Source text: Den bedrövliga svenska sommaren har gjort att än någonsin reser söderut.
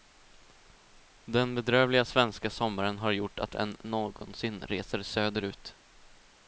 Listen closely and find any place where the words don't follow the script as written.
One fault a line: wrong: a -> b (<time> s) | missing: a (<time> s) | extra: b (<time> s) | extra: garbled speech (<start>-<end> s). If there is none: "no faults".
no faults